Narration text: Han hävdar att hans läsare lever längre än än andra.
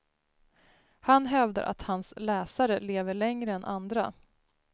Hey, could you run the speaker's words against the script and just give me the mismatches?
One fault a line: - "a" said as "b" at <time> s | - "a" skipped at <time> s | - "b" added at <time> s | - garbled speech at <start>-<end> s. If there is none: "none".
- "än" skipped at 3.6 s